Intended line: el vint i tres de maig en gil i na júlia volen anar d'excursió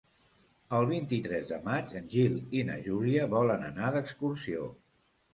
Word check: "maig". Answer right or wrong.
right